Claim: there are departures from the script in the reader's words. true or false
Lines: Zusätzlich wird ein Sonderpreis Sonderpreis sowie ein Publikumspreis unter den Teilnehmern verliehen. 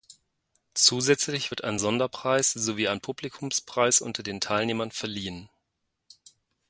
true